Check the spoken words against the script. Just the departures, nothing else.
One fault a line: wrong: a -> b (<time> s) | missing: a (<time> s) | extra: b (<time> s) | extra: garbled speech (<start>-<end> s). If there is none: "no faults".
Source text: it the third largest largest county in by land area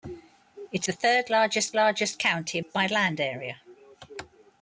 no faults